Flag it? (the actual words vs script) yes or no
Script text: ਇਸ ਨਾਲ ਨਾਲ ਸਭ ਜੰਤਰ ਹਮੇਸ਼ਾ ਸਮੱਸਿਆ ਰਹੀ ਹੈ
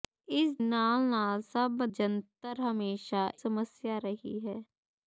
no